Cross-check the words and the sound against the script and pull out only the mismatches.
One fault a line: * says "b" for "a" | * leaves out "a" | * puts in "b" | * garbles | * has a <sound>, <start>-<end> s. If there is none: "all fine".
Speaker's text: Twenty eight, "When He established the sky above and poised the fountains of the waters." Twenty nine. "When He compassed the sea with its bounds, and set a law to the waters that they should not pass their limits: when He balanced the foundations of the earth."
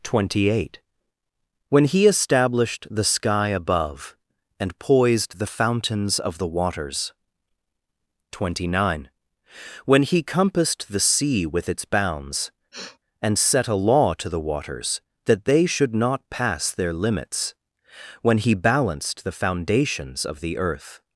* has a sniff, 12.7-13.0 s